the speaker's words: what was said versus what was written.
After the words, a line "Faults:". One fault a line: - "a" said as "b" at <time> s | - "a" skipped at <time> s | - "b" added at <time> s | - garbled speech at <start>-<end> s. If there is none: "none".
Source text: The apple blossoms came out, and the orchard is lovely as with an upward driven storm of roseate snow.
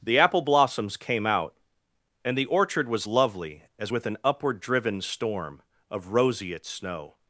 The apple blossoms came out, and the orchard was lovely as with an upward driven storm of roseate snow.
Faults:
- "is" said as "was" at 2.9 s